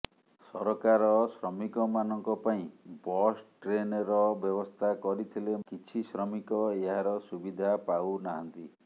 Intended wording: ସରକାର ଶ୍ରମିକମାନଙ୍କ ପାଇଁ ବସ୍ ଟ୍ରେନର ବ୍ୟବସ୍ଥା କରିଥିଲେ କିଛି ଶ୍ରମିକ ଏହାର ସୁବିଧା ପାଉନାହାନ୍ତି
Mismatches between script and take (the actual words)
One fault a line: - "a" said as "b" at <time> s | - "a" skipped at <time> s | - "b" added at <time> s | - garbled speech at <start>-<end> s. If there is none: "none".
none